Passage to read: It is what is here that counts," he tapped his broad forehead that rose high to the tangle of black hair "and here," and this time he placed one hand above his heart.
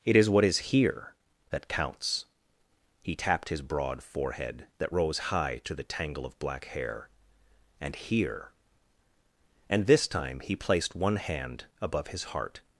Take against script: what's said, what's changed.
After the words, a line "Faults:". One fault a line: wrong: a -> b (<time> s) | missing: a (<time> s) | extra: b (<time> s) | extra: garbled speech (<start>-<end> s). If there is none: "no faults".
It is what is here that counts," he tapped his broad forehead that rose high to the tangle of black hair "and here," and this time he placed one hand above his heart.
Faults:
no faults